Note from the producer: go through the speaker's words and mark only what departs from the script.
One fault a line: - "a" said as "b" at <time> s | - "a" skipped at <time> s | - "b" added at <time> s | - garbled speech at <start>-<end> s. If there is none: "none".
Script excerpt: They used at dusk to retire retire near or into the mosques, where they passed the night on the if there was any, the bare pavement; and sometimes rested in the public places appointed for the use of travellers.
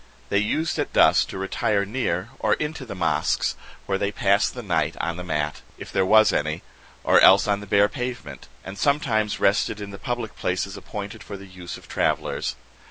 - "retire" skipped at 1.9 s
- "mat" added at 5.2 s
- "or else on" added at 7.0 s